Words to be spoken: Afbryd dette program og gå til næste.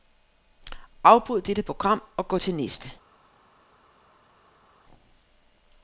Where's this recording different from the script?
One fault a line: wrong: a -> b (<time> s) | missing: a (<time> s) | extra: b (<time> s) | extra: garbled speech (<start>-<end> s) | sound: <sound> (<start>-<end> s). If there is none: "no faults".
no faults